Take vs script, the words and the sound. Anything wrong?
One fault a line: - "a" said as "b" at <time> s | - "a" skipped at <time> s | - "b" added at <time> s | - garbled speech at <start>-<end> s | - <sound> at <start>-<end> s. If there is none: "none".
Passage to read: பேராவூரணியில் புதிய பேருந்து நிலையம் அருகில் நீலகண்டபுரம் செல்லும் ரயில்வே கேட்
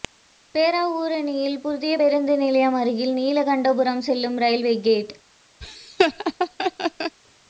- laugh at 5.6-7.2 s